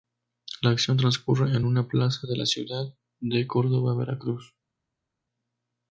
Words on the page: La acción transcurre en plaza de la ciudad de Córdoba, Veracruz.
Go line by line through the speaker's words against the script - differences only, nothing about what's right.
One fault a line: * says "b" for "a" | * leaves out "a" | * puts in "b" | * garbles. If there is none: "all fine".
* puts in "una"